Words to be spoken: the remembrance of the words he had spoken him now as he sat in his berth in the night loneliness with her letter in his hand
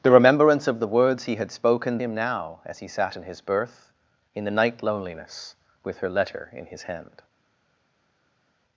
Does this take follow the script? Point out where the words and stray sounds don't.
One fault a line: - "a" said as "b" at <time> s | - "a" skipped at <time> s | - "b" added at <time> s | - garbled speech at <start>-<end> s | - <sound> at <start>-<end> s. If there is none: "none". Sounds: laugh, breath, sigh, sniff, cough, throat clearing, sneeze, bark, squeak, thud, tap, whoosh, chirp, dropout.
none